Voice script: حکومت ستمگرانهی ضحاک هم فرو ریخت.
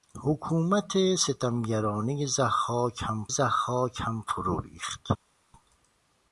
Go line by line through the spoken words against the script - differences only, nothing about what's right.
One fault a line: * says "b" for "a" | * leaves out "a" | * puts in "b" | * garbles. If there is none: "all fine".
* puts in "ضحاک هم"